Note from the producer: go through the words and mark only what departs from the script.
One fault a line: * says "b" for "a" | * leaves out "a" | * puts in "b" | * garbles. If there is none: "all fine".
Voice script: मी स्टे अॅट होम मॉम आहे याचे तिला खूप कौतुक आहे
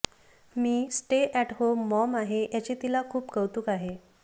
all fine